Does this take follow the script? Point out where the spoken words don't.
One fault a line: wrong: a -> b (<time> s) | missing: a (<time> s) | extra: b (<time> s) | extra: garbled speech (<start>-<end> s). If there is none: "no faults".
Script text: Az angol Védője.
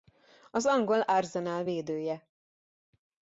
extra: Arsenal (1.0 s)